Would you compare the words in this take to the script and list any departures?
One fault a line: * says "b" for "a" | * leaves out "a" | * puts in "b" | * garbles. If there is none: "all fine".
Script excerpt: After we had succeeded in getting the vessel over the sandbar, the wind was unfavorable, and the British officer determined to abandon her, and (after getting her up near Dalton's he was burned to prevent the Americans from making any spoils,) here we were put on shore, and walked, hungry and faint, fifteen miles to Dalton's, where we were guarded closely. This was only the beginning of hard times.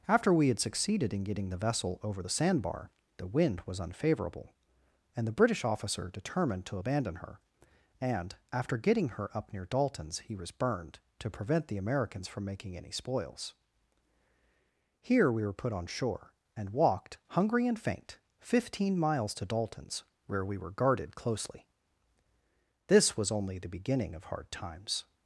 all fine